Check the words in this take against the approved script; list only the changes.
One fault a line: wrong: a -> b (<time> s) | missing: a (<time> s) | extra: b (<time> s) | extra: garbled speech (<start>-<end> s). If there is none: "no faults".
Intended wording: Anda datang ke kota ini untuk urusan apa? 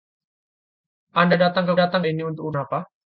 wrong: kota -> datang (1.7 s)
missing: urusan (2.5 s)